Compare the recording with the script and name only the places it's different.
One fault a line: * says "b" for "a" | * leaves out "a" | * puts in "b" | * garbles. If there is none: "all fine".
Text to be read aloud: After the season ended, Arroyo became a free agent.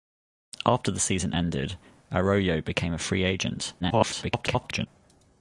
* garbles